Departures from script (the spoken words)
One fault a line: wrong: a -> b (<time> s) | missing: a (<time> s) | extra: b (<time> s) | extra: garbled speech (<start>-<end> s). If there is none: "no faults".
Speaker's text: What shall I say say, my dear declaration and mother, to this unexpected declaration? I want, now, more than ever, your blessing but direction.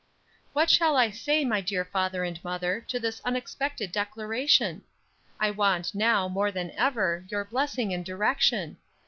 missing: say (1.4 s)
wrong: declaration -> father (1.8 s)
wrong: but -> and (7.9 s)